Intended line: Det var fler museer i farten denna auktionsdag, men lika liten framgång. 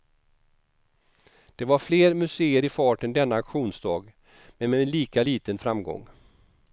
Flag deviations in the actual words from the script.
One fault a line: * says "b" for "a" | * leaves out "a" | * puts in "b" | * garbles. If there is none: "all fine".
* puts in "med"